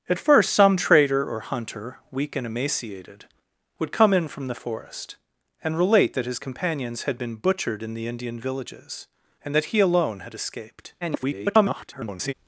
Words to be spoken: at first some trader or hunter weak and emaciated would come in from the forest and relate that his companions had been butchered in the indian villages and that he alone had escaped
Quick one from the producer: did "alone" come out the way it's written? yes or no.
yes